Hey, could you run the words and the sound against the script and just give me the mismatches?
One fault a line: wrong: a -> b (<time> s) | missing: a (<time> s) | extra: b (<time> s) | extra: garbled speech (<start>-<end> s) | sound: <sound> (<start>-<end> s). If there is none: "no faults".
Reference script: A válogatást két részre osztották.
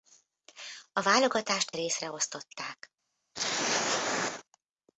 missing: két (1.7 s)
sound: throat clearing (3.3-4.4 s)